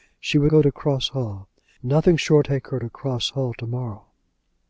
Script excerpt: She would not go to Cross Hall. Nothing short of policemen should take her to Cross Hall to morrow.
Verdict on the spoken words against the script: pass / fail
fail